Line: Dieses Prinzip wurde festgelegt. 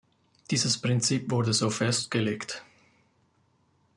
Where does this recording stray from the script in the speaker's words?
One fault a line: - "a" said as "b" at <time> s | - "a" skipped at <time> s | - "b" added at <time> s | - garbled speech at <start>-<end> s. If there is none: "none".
- "so" added at 1.5 s